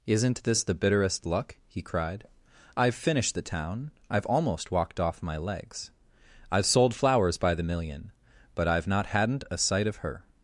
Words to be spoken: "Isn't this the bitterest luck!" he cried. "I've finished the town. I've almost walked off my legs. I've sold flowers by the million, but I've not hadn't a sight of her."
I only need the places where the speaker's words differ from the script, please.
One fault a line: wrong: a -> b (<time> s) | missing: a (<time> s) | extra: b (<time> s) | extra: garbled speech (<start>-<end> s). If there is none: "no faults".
no faults